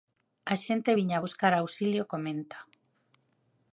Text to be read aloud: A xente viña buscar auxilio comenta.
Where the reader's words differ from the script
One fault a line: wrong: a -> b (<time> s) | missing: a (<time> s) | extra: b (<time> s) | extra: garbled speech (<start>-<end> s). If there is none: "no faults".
no faults